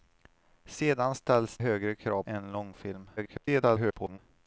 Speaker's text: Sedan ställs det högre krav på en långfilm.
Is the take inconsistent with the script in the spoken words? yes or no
yes